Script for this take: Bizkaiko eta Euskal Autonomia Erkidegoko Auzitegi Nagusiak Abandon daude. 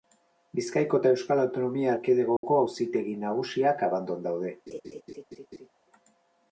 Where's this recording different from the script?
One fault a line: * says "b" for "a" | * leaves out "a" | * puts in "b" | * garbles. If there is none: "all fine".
all fine